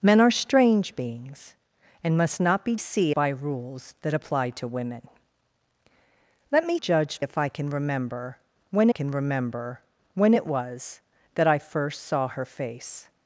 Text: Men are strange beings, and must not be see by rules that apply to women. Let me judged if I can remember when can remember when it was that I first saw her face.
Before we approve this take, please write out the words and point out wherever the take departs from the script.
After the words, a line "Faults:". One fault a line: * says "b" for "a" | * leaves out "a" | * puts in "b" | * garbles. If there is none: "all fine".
Men are strange beings, and must not be see by rules that apply to women. Let me judged if I can remember when can remember when it was that I first saw her face.
Faults:
all fine